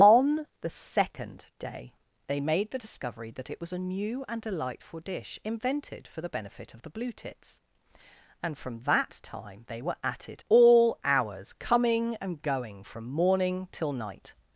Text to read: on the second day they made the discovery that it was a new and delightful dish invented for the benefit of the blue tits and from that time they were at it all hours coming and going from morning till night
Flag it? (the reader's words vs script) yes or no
no